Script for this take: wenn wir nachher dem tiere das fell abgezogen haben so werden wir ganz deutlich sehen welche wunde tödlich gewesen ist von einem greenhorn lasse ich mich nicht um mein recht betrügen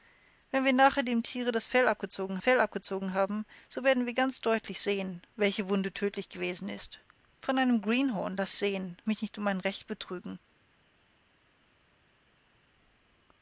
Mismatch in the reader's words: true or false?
true